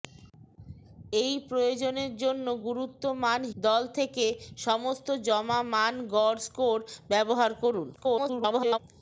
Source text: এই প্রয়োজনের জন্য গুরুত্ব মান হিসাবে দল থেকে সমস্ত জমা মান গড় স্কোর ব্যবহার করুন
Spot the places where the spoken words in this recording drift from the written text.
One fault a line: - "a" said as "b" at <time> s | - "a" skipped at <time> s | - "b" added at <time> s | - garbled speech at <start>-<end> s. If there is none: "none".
- "হিসাবে" skipped at 3.4 s
- garbled speech at 8.0-8.8 s